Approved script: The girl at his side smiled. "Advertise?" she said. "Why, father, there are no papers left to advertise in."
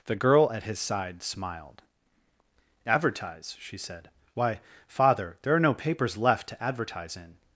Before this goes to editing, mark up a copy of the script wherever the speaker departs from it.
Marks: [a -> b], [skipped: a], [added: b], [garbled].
The girl at his side smiled. "Advertise?" she said. "Why, father, there are no papers left to advertise in."